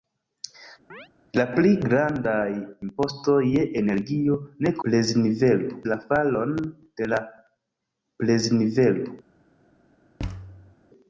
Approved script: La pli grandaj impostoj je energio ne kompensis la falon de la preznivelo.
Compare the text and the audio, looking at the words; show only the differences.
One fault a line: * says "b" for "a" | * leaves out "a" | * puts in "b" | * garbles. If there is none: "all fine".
* says "preznivelo" for "kompensis"